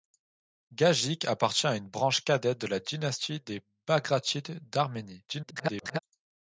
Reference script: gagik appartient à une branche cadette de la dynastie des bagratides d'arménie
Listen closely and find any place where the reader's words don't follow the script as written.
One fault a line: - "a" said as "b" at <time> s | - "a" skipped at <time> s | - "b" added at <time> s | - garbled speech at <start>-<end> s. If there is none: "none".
- garbled speech at 5.3-6.0 s